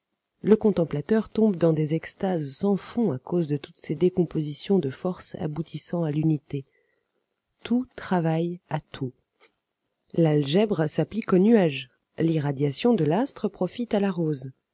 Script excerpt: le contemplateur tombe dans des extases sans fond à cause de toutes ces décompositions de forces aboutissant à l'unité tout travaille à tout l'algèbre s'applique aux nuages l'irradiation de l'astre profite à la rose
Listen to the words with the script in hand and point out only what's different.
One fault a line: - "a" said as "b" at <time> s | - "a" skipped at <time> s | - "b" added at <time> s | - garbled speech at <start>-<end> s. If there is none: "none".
none